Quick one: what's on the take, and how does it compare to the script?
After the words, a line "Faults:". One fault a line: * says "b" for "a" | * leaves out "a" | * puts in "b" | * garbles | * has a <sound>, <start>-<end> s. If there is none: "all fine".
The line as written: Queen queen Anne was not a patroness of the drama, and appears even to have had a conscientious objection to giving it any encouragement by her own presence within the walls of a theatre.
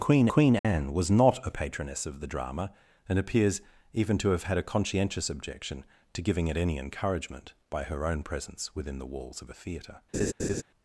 Queen queen Anne was not a patroness of the drama, and appears even to have had a conscientious objection to giving it any encouragement by her own presence within the walls of a theatre.
Faults:
* has a dropout, 0.6-0.6 s
* has a laugh, 10.1-10.6 s